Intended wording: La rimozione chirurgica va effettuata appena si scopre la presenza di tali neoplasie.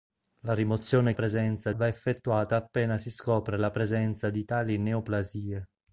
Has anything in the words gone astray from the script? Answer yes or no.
yes